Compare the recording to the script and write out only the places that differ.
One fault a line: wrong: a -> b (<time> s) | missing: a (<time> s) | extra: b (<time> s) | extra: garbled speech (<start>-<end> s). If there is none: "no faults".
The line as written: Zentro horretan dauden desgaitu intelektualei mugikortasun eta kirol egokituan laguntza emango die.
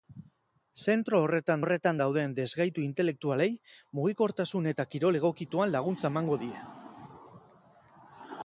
extra: horretan (1.6 s)